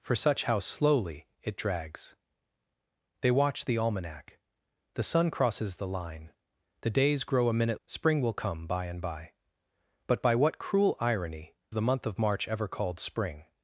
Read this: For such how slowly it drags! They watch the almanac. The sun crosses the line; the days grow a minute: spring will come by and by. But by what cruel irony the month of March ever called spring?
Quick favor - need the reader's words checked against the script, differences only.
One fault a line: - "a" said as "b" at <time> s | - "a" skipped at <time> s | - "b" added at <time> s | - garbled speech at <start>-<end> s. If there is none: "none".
none